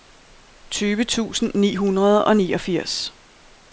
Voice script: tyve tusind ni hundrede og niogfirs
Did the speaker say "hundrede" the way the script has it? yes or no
yes